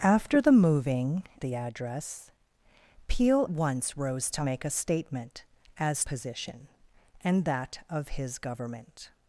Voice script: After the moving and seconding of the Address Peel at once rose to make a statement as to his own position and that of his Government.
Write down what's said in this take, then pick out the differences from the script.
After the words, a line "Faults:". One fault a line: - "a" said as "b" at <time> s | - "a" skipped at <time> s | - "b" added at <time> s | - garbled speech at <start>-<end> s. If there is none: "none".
After the moving the Address Peel once rose to make a statement as position and that of his Government.
Faults:
- "and seconding of" skipped at 1.2 s
- "at" skipped at 3.5 s
- "to his own" skipped at 6.0 s